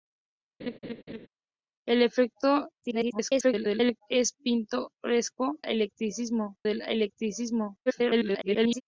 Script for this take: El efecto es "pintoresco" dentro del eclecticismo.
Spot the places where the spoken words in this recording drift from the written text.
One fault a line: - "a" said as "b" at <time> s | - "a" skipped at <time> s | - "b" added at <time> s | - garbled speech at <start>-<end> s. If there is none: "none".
- garbled speech at 2.8-4.0 s
- "dentro" said as "eclecticismo" at 5.6 s
- garbled speech at 7.9-8.8 s